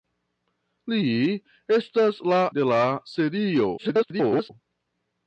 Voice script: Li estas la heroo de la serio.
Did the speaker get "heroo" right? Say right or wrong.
wrong